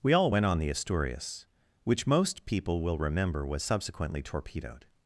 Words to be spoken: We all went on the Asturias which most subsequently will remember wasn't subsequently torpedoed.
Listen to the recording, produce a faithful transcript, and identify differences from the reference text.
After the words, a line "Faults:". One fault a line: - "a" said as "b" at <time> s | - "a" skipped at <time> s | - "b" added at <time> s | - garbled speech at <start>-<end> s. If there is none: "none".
We all went on the Asturias which most people will remember was subsequently torpedoed.
Faults:
- "subsequently" said as "people" at 2.4 s
- "wasn't" said as "was" at 3.5 s